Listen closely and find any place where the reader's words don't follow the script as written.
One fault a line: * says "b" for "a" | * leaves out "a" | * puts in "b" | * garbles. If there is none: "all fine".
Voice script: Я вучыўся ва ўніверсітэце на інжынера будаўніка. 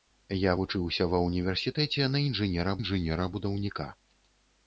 * puts in "інжынера"